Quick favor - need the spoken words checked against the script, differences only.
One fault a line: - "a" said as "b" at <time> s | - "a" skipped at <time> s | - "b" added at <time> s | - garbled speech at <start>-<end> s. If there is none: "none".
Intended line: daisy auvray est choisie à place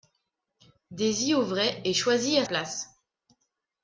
none